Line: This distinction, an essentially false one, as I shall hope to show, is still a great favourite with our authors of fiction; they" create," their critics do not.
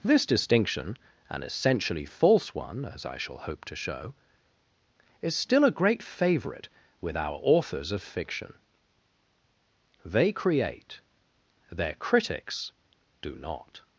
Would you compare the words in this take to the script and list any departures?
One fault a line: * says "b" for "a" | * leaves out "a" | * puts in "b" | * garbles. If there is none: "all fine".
all fine